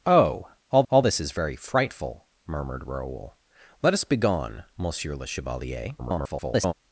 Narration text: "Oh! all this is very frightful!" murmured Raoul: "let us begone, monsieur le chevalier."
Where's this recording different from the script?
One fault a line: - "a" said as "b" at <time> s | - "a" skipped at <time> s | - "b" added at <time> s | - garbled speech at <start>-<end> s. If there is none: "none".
- "all" added at 0.9 s
- garbled speech at 6.0-6.7 s